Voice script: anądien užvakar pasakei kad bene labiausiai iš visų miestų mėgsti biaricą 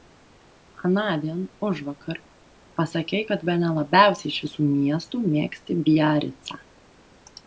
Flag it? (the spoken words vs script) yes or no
no